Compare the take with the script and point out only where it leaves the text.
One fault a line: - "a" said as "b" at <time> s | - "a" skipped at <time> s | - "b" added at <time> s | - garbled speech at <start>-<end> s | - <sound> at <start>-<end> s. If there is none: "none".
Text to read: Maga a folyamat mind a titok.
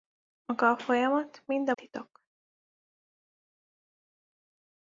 none